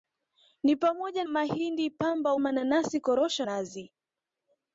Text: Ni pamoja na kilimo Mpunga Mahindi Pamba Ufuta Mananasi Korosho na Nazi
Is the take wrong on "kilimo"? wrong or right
wrong